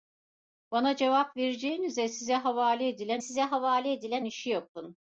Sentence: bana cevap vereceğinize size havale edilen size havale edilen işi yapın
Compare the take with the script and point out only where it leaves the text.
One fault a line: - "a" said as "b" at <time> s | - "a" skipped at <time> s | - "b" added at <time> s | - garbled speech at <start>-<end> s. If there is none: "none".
none